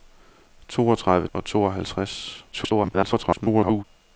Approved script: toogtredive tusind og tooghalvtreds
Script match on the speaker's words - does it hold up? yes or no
no